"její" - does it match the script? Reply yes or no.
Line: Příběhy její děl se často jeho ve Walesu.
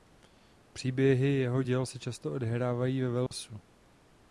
no